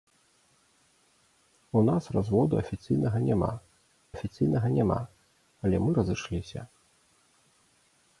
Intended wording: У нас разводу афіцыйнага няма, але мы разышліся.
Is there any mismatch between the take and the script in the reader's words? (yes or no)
yes